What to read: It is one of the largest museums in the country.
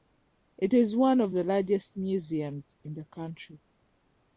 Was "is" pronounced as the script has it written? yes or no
yes